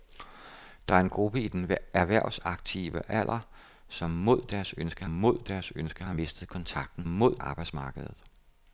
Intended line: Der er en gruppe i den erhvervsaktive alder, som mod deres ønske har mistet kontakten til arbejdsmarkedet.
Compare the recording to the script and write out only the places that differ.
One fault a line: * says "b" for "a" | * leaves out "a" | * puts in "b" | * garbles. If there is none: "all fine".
* puts in "mod deres ønske"
* says "mod" for "til"